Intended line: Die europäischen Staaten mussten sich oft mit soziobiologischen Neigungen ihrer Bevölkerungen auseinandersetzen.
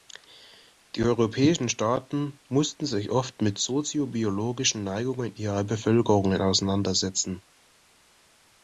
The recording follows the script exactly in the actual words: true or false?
true